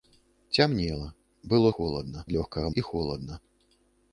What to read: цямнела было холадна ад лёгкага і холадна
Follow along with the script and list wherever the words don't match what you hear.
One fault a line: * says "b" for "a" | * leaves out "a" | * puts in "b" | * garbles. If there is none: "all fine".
all fine